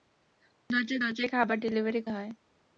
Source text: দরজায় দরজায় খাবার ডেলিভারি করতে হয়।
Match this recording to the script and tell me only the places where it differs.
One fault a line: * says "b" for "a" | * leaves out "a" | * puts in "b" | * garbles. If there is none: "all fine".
* leaves out "করতে"